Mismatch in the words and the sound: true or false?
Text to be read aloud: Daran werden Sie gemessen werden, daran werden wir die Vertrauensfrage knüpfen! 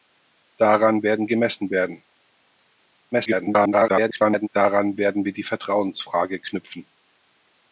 true